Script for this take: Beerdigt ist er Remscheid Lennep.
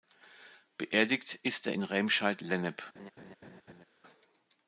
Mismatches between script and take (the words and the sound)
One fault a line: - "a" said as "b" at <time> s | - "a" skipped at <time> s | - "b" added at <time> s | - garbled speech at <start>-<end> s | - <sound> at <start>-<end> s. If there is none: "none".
- "in" added at 1.7 s
- laugh at 2.9-3.8 s